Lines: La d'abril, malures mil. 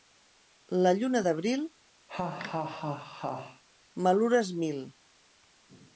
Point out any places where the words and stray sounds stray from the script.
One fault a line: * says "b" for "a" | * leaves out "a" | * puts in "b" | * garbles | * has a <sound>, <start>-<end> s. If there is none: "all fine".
* puts in "lluna"
* has a laugh, 2.1-3.6 s